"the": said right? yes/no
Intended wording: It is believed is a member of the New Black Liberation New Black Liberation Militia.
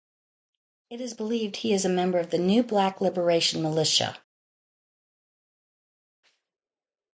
yes